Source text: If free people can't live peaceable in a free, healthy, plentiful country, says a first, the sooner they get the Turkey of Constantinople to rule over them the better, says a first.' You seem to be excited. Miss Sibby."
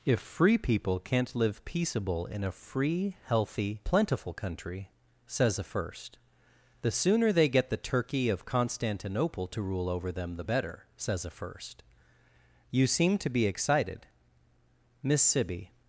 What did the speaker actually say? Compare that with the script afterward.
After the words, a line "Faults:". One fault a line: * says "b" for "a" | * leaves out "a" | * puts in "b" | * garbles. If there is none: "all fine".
If free people can't live peaceable in a free, healthy, plentiful country, says a first, the sooner they get the Turkey of Constantinople to rule over them the better, says a first.' You seem to be excited. Miss Sibby."
Faults:
all fine